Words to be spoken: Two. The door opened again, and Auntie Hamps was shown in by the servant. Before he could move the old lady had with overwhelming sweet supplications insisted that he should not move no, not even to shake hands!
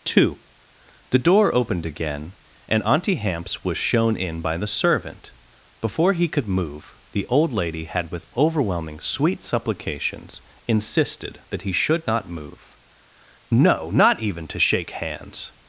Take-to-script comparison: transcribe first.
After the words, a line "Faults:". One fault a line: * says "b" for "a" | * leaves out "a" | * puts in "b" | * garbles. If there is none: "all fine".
Two. The door opened again, and Auntie Hamps was shown in by the servant. Before he could move the old lady had with overwhelming sweet supplications insisted that he should not move no, not even to shake hands!
Faults:
all fine